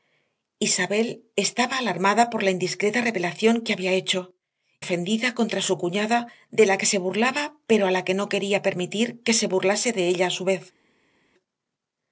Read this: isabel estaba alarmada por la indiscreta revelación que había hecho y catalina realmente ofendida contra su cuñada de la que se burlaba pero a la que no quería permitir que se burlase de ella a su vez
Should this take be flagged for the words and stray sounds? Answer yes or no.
yes